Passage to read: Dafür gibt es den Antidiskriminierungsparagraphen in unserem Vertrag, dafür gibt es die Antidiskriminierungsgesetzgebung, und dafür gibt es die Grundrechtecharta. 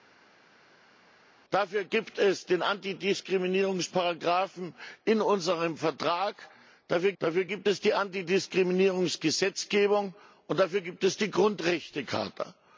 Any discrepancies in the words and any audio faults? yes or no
yes